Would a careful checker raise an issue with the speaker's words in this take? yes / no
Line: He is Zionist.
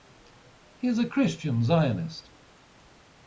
yes